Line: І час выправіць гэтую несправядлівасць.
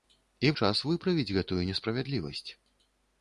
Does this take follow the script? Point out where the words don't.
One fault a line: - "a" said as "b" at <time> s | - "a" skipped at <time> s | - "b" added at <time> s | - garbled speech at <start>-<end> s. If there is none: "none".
none